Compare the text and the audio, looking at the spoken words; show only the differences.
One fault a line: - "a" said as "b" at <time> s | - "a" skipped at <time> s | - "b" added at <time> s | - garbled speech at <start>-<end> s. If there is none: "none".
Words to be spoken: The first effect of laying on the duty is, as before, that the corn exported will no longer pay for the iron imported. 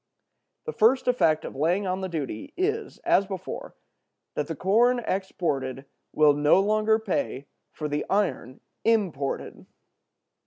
none